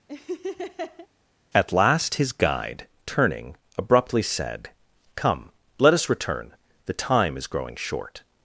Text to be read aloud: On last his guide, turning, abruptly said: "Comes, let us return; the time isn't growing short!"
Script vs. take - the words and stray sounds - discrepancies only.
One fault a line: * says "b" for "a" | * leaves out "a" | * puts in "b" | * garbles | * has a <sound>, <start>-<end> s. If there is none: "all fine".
* has a laugh, 0.1-1.1 s
* says "At" for "On"
* says "Come" for "Comes"
* says "is" for "isn't"